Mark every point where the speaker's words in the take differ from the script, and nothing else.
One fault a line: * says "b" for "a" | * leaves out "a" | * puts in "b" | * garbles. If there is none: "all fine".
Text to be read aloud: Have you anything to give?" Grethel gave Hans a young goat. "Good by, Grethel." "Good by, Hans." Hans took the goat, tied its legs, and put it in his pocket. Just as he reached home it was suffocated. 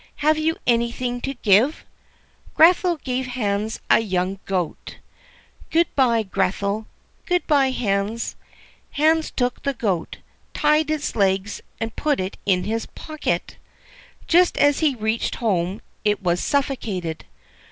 all fine